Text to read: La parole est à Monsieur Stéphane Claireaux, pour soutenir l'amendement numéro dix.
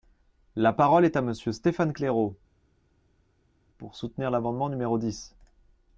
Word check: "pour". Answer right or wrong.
right